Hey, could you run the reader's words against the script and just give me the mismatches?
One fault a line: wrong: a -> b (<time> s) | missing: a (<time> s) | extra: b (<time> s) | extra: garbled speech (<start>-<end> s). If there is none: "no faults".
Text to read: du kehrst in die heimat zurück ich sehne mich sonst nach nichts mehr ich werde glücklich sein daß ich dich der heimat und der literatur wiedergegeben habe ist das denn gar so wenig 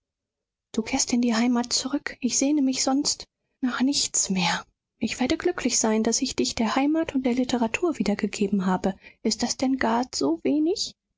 no faults